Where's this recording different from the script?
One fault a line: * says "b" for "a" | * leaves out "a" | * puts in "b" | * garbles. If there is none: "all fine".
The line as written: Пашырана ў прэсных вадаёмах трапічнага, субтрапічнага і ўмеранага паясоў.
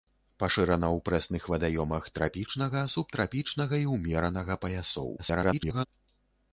* garbles